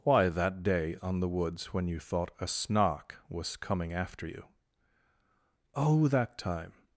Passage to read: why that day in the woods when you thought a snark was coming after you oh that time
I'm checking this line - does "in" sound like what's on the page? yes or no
no